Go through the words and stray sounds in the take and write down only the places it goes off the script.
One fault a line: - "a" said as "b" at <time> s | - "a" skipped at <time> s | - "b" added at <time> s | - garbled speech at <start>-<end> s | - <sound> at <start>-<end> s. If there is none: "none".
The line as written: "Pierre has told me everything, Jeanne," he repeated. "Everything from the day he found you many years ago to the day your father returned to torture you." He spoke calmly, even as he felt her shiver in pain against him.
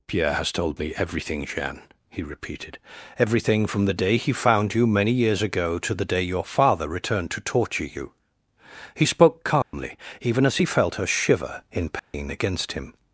- dropout at 9.6-9.7 s
- dropout at 12.0-12.1 s